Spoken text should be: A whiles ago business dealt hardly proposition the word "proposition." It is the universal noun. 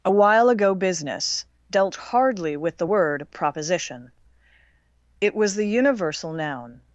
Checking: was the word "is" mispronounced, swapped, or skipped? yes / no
yes